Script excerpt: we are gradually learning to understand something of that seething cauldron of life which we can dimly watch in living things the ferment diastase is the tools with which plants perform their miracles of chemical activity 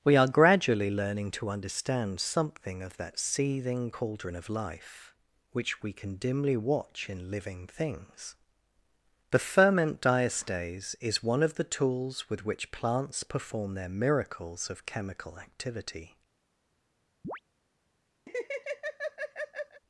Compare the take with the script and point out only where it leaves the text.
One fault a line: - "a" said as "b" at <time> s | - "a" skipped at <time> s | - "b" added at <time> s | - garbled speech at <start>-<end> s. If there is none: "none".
- "one of" added at 11.2 s